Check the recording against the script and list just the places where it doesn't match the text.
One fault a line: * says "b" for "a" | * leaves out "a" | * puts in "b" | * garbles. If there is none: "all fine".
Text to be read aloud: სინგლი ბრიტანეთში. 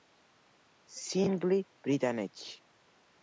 all fine